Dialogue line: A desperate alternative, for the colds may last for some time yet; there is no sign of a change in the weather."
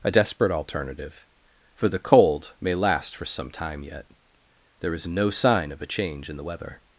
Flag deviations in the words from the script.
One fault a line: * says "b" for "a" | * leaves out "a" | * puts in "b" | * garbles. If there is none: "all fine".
* says "cold" for "colds"